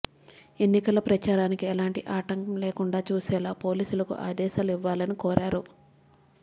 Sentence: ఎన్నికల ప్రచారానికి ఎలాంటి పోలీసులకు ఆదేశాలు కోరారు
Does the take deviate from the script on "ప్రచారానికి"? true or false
false